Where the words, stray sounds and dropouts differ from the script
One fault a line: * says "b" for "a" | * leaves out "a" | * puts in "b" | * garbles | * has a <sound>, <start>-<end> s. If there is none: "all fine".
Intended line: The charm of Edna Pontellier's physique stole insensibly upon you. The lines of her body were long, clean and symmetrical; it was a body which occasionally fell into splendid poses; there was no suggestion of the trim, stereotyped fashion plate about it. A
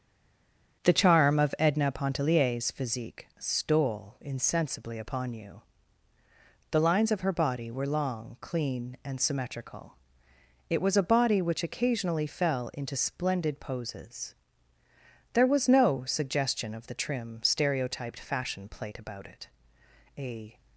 all fine